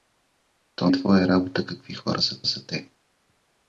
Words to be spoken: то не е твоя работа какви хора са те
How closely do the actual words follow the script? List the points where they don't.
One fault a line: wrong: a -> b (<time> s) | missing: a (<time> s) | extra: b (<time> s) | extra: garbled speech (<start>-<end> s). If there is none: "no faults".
missing: не (0.9 s)
extra: са (2.4 s)